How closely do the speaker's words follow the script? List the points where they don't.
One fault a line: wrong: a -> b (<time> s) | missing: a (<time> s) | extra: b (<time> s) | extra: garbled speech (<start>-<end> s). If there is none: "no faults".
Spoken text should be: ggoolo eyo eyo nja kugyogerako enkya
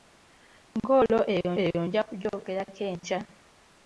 no faults